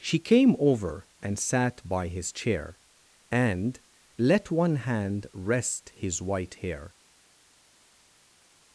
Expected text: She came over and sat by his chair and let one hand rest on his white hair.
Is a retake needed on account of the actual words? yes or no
yes